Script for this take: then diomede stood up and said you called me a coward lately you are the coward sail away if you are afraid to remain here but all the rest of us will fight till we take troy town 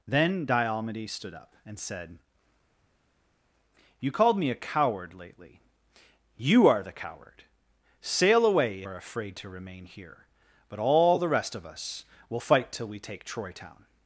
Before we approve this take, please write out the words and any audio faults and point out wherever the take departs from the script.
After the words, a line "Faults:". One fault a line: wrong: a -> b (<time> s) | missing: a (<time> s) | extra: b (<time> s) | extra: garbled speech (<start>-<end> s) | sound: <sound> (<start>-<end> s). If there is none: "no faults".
then diomede stood up and said you called me a coward lately you are the coward sail away are afraid to remain here but all the rest of us will fight till we take troy town
Faults:
missing: if you (8.8 s)